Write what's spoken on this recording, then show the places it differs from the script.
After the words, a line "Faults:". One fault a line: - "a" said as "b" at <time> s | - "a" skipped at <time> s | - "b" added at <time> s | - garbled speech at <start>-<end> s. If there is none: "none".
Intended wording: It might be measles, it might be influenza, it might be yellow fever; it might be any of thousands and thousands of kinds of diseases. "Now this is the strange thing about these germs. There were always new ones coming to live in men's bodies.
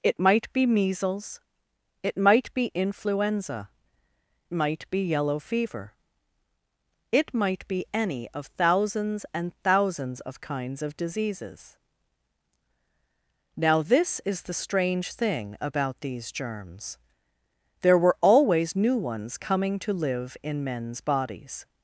It might be measles, it might be influenza, might be yellow fever; it might be any of thousands and thousands of kinds of diseases. "Now this is the strange thing about these germs. There were always new ones coming to live in men's bodies.
Faults:
- "it" skipped at 3.7 s